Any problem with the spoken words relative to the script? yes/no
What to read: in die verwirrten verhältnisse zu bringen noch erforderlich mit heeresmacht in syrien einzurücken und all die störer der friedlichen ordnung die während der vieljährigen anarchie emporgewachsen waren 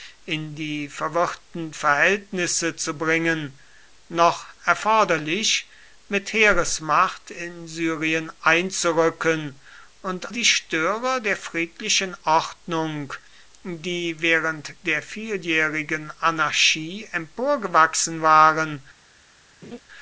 yes